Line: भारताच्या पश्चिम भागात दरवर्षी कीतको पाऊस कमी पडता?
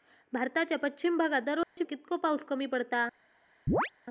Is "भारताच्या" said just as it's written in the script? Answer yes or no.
yes